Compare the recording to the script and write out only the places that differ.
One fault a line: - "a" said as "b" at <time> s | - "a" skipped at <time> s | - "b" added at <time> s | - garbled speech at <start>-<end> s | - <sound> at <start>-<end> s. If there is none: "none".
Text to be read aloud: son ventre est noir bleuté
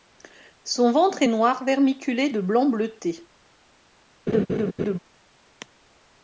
- "vermiculé de blanc" added at 1.7 s
- laugh at 4.3-5.0 s